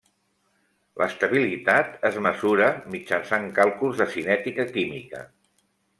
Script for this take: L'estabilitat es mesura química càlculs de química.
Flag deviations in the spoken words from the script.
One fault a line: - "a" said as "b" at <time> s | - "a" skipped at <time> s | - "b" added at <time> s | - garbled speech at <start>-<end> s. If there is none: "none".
- "química" said as "mitjançant" at 2.9 s
- "cinètica" added at 4.1 s